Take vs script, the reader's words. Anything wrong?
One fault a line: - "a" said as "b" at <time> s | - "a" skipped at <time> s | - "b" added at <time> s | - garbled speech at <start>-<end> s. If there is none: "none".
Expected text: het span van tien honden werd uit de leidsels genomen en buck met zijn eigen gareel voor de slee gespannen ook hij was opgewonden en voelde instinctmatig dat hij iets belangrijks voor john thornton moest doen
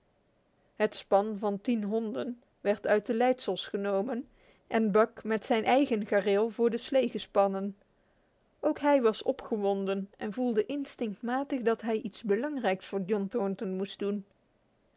none